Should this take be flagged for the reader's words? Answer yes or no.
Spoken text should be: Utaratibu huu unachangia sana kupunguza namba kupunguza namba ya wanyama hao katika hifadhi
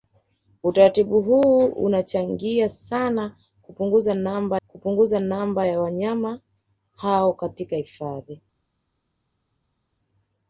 no